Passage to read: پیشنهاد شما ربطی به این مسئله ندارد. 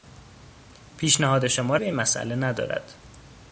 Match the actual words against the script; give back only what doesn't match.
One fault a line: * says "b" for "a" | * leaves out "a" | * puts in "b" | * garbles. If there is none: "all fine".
* leaves out "ربطی"